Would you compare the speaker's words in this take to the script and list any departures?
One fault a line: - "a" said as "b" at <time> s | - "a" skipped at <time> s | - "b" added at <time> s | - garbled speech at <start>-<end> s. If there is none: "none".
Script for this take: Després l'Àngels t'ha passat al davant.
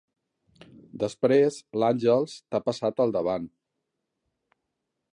none